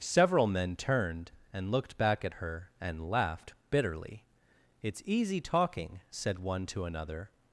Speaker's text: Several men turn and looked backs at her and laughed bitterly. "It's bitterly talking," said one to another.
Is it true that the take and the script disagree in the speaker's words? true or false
true